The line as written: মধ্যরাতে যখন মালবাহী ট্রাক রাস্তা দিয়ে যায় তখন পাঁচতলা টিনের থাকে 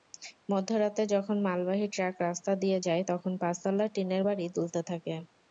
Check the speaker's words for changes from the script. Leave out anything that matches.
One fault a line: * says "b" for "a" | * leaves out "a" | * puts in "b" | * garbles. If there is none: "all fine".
* puts in "বাড়ি দুলতে"